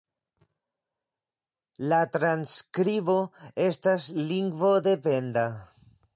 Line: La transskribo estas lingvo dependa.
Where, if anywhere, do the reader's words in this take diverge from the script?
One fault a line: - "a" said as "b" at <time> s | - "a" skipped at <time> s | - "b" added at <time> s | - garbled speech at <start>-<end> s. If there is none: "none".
none